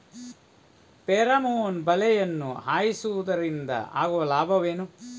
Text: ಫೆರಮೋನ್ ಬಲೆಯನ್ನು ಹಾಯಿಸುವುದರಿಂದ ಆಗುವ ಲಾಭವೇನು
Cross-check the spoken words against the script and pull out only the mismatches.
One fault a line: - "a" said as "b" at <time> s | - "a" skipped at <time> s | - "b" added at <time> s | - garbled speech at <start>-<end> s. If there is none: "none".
none